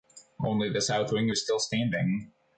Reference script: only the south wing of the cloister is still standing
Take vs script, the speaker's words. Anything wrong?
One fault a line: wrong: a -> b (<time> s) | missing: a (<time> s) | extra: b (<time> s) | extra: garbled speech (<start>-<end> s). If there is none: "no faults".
missing: of the cloister (1.3 s)